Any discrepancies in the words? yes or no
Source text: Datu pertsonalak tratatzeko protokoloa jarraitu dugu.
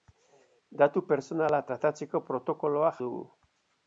yes